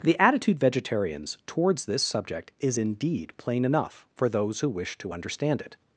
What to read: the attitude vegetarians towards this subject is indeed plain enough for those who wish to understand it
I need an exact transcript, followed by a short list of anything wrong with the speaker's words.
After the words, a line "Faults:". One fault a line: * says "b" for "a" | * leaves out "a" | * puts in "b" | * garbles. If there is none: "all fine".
the attitude vegetarians towards this subject is indeed plain enough for those who wish to understand it
Faults:
all fine